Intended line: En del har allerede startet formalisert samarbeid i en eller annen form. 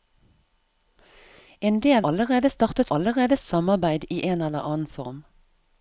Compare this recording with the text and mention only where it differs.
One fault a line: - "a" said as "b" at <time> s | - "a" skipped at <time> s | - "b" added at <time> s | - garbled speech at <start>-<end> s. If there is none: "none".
- "har" skipped at 2.0 s
- "formalisert" said as "allerede" at 3.0 s